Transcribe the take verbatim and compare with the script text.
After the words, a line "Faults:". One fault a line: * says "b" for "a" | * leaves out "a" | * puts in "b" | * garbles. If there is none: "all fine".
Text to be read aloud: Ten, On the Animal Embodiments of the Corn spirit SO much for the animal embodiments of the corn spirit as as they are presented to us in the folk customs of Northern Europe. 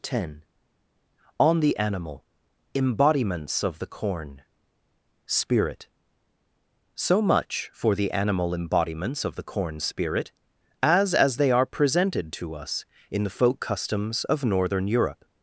Ten, On the Animal Embodiments of the Corn spirit SO much for the animal embodiments of the corn spirit as as they are presented to us in the folk customs of Northern Europe.
Faults:
all fine